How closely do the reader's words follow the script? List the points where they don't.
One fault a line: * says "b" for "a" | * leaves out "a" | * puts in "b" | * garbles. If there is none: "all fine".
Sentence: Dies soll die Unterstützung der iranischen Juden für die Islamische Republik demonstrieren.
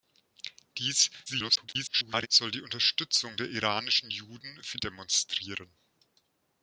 * garbles
* leaves out "die Islamische Republik"